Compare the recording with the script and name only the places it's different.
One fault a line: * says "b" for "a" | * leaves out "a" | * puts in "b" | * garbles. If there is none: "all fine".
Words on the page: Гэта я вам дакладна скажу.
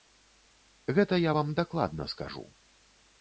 all fine